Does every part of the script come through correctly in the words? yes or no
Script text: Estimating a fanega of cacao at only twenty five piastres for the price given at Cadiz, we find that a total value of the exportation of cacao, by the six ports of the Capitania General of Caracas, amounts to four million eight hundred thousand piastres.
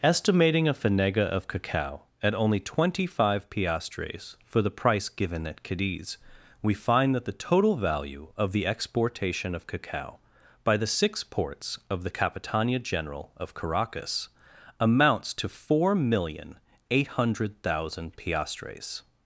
no